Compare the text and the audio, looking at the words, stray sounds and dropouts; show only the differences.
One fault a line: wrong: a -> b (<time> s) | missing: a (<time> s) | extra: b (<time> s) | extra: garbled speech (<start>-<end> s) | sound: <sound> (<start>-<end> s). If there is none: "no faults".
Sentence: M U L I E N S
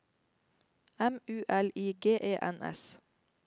extra: G (2.0 s)